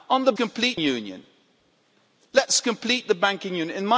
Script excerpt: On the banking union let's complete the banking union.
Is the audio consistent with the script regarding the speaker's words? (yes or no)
no